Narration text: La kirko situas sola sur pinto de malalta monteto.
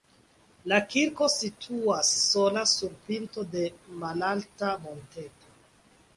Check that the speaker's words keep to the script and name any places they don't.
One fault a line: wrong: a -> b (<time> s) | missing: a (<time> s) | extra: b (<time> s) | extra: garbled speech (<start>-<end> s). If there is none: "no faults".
no faults